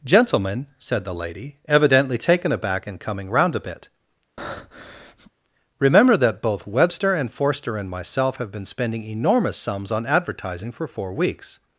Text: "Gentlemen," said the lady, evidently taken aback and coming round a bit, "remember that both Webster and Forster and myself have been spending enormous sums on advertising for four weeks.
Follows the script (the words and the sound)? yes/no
no